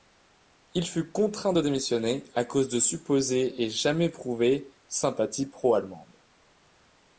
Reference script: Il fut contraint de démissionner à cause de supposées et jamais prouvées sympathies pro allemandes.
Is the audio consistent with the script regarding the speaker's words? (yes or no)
yes